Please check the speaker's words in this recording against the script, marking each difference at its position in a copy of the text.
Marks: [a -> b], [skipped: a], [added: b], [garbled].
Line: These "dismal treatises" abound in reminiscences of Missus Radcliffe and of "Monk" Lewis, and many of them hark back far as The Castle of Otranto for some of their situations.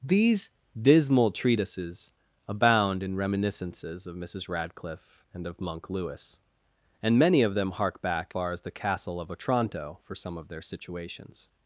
These "dismal treatises" abound in reminiscences of Missus Radcliffe and of "Monk" Lewis, and many of them hark back far as The Castle of Otranto for some of their situations.